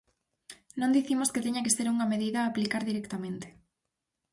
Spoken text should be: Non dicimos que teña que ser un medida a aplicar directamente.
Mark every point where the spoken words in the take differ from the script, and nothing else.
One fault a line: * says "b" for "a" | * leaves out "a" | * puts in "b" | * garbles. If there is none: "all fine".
* says "unha" for "un"